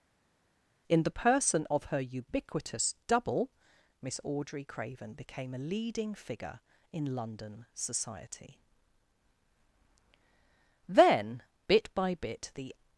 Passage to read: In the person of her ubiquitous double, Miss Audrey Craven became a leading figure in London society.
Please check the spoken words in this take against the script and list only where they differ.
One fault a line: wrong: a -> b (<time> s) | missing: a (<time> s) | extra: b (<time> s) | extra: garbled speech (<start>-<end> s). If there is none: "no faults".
extra: Then bit by bit the (10.9 s)